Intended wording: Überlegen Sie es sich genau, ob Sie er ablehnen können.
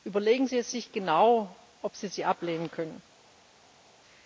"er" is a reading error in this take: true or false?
true